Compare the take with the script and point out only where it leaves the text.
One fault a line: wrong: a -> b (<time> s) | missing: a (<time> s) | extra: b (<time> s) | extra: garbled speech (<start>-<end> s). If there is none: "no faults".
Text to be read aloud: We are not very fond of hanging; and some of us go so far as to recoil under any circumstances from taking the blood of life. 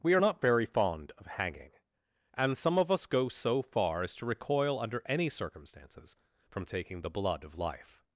no faults